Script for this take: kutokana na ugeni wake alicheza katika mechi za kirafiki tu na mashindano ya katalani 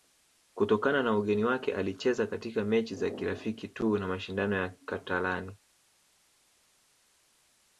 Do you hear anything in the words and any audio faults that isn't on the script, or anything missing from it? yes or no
no